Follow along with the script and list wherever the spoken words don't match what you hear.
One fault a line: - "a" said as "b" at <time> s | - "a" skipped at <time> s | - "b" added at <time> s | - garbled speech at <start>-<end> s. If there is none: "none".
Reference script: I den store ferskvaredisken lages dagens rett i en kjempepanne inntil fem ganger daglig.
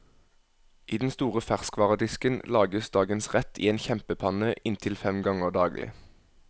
none